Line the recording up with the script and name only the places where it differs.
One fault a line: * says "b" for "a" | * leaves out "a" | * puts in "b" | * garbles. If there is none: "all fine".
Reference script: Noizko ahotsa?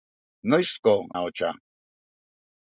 all fine